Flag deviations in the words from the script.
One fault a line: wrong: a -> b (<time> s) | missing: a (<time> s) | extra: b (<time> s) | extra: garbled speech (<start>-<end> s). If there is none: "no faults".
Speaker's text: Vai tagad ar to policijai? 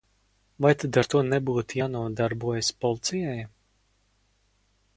wrong: tagad -> tad (0.8 s)
extra: nebūtu jānodarbojas (1.3 s)